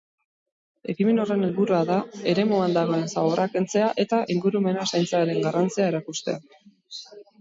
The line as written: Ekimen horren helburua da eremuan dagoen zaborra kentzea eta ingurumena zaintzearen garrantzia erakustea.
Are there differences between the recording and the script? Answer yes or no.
no